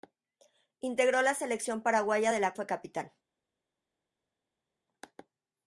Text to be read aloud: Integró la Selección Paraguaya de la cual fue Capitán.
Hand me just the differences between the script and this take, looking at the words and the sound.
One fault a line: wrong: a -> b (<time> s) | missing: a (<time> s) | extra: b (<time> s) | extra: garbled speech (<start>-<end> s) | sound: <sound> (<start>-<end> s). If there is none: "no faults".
missing: cual (2.5 s)